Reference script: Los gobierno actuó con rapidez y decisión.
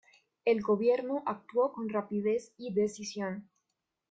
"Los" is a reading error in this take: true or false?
true